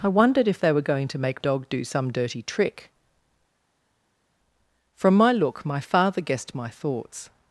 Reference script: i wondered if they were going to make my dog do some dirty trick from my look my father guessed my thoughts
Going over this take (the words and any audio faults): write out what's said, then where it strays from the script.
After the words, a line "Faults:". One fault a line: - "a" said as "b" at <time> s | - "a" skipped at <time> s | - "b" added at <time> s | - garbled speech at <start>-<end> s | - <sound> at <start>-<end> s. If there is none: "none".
i wondered if they were going to make dog do some dirty trick from my look my father guessed my thoughts
Faults:
- "my" skipped at 1.4 s